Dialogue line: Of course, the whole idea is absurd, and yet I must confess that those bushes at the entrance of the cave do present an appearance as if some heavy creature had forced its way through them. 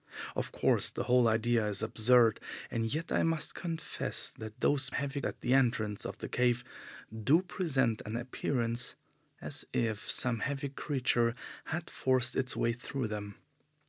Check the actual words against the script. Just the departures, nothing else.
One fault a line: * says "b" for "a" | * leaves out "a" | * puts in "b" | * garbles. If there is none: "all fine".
* says "heavy" for "bushes"